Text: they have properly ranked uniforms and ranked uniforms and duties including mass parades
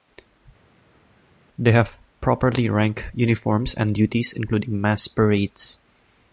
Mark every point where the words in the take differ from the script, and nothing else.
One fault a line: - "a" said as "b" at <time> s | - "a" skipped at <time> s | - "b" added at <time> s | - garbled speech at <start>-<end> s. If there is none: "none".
- "ranked uniforms and" skipped at 4.0 s